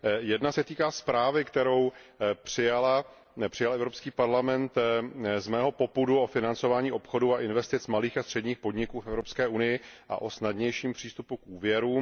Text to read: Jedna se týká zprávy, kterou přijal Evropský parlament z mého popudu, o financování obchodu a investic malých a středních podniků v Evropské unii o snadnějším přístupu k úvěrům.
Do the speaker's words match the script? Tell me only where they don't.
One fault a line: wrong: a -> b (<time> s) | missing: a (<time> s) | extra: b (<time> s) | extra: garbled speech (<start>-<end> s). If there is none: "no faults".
extra: a (10.1 s)